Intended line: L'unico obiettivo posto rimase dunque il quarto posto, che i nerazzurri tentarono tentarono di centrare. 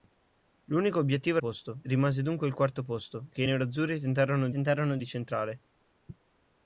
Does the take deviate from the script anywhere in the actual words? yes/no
no